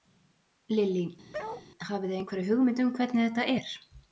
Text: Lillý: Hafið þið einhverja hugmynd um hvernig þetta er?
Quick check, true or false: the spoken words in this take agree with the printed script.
true